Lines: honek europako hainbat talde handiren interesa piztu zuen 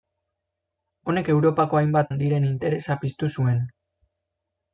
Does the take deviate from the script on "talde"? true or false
true